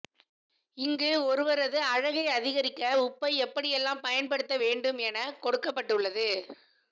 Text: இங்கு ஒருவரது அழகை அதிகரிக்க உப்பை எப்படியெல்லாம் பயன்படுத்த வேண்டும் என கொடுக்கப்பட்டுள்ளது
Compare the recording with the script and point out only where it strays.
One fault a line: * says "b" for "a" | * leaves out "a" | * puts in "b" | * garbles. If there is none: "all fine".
all fine